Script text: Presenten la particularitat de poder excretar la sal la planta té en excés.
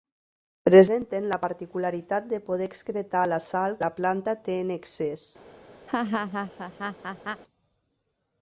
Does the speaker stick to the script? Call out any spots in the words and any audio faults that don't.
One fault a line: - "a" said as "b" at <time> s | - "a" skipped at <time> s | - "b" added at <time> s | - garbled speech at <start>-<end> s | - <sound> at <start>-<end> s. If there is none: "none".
- laugh at 5.9-7.4 s